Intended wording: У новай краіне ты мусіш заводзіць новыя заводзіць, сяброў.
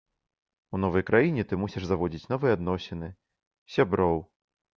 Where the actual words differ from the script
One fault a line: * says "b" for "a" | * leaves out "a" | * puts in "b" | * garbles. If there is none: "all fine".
* says "адносіны" for "заводзіць"